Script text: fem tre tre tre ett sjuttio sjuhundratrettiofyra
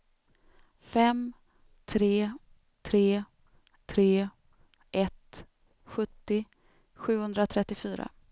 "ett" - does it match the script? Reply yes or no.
yes